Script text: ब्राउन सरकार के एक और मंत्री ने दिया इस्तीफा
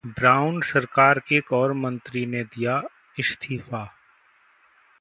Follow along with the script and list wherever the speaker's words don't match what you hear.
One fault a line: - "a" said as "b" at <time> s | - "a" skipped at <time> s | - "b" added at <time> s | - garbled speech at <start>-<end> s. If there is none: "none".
- "के" skipped at 1.2 s